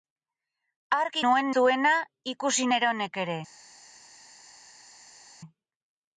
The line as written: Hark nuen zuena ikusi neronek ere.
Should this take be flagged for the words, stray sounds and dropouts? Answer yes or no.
no